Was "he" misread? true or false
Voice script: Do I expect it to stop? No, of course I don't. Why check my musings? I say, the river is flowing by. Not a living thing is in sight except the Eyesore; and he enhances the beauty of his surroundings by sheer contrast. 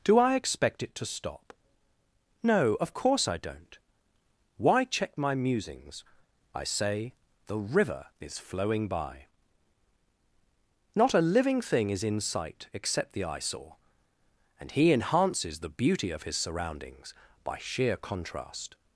false